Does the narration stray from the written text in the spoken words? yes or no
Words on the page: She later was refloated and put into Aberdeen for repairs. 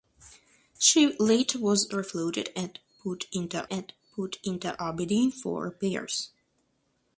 yes